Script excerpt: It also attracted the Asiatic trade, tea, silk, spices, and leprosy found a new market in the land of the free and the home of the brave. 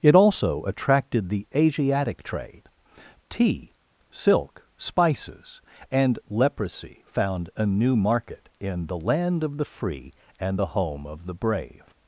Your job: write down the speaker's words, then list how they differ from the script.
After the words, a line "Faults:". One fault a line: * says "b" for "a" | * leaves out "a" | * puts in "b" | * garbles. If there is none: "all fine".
It also attracted the Asiatic trade, tea, silk, spices, and leprosy found a new market in the land of the free and the home of the brave.
Faults:
all fine